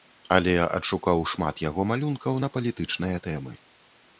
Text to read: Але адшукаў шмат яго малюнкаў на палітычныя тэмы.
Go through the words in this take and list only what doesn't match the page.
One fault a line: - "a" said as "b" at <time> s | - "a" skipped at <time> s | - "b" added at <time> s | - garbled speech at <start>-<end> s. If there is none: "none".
none